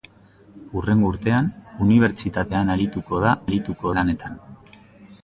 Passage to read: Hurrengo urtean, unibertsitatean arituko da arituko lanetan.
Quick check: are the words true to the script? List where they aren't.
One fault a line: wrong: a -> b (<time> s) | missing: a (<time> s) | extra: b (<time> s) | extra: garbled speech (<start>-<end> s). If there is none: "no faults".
no faults